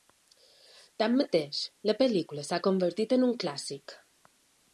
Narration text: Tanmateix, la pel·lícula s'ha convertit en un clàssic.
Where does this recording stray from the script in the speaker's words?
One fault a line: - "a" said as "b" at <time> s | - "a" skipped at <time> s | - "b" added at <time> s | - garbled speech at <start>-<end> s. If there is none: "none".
none